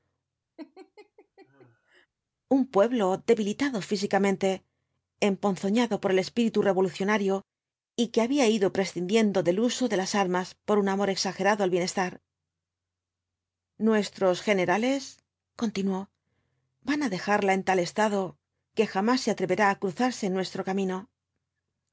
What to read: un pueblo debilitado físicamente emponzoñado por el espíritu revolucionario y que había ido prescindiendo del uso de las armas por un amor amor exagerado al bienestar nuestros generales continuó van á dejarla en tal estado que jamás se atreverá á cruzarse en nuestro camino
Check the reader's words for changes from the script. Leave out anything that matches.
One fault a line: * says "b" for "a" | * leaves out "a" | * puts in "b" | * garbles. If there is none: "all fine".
* leaves out "amor"